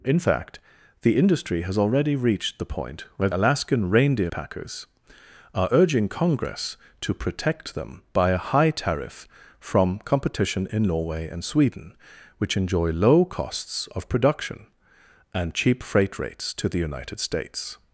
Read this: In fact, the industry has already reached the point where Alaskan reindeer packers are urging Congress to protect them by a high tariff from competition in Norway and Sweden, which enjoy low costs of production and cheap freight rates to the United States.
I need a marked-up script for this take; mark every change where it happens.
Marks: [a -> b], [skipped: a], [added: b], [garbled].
In fact, the industry has already reached the point where Alaskan reindeer packers are urging Congress to protect them by a high tariff from competition in Norway and Sweden, which enjoy low costs of production and cheap freight rates to the United States.